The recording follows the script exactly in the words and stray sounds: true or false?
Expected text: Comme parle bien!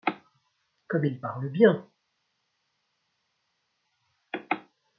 false